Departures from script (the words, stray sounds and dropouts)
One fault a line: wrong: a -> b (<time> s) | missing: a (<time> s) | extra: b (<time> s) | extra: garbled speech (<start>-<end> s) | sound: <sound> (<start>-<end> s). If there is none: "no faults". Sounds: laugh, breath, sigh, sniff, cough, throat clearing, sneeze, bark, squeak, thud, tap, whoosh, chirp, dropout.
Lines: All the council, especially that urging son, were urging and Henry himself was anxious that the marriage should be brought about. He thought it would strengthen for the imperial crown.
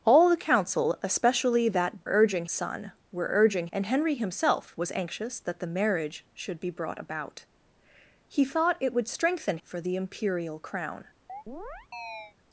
sound: chirp (11.3-12.3 s)